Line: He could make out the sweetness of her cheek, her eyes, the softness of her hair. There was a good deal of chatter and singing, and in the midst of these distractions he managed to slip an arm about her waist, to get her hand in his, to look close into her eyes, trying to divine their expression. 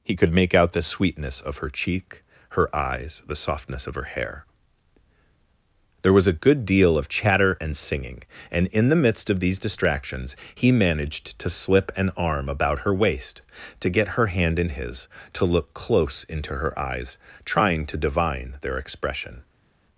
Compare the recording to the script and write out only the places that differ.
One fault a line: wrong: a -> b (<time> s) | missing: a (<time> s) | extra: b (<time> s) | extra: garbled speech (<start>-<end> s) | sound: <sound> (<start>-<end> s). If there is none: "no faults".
no faults